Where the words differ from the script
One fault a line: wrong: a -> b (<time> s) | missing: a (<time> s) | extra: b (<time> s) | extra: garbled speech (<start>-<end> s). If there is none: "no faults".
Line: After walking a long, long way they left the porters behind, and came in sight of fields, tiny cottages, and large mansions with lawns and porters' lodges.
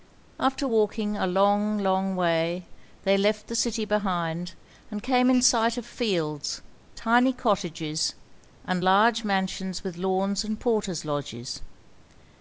wrong: porters -> city (3.5 s)